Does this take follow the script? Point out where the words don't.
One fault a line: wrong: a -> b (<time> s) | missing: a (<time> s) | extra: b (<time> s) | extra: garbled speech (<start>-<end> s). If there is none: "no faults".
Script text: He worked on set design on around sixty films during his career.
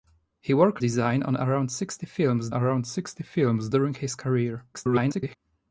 extra: design (0.8 s)
wrong: set design on -> around sixty films (1.3 s)
extra: garbled speech (4.7-5.4 s)